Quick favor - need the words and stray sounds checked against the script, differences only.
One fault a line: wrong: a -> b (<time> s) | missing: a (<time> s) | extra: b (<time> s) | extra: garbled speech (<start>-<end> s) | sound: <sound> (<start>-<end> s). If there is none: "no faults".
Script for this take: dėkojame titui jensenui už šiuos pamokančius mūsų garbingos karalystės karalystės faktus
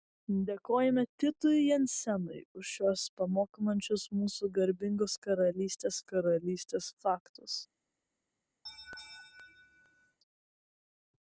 sound: laugh (8.7-10.2 s)